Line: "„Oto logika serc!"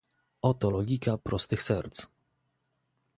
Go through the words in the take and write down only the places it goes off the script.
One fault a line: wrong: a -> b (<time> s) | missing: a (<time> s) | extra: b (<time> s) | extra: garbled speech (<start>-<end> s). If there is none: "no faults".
extra: prostych (1.1 s)